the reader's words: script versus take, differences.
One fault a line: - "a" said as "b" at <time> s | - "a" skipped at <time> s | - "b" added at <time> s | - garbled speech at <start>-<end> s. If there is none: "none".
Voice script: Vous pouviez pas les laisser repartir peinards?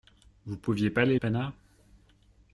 - "laisser repartir" skipped at 1.2 s